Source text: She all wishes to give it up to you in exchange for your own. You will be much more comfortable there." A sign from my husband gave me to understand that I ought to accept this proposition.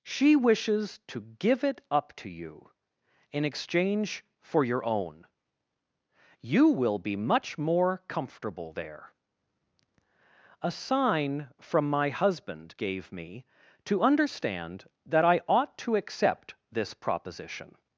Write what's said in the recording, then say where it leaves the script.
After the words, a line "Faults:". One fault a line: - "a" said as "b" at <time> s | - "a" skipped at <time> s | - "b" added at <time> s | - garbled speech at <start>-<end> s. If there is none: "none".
She wishes to give it up to you in exchange for your own. You will be much more comfortable there." A sign from my husband gave me to understand that I ought to accept this proposition.
Faults:
- "all" skipped at 0.3 s